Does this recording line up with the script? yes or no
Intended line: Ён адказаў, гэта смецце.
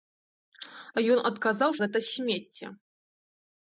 yes